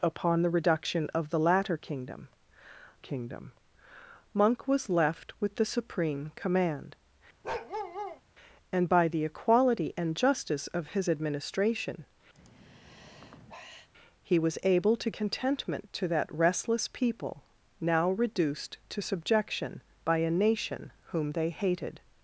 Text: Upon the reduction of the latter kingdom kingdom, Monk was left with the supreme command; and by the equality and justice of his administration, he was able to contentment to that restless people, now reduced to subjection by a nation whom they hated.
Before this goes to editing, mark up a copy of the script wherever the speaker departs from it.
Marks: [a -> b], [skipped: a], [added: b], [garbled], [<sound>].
Upon the reduction of the latter kingdom kingdom, Monk was left with the supreme command; [bark] and by the equality and justice of his administration, [sigh] he was able to contentment to that restless people, now reduced to subjection by a nation whom they hated.